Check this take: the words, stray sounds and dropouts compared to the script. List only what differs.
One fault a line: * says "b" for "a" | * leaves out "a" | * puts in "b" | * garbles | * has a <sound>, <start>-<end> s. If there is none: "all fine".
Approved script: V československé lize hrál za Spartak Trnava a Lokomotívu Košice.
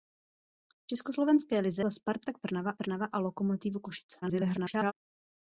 * leaves out "hrál"
* puts in "Trnava"
* garbles